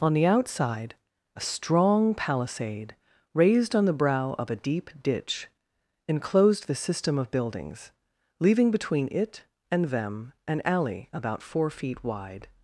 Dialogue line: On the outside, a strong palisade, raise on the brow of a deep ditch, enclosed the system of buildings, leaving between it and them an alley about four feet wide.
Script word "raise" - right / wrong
wrong